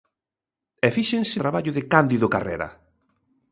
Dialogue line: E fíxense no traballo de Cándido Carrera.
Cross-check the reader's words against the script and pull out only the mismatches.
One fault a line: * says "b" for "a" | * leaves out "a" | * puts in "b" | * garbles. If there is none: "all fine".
* leaves out "no"